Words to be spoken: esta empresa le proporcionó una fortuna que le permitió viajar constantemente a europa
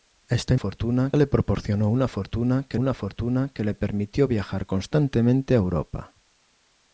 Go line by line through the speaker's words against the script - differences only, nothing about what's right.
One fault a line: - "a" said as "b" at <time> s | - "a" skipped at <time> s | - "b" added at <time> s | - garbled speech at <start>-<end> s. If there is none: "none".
- "empresa" said as "fortuna" at 0.5 s
- "una fortuna que" added at 2.8 s